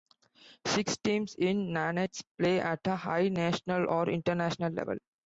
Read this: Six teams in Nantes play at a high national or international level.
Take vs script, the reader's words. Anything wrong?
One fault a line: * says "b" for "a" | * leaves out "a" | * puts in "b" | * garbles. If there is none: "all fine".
all fine